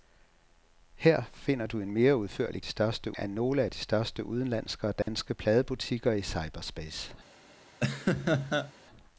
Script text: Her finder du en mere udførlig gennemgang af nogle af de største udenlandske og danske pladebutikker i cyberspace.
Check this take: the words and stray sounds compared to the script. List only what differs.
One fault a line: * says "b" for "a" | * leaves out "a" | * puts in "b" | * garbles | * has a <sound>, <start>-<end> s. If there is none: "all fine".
* says "største" for "gennemgang"
* has a dropout, 5.0-5.1 s
* has a laugh, 7.8-8.7 s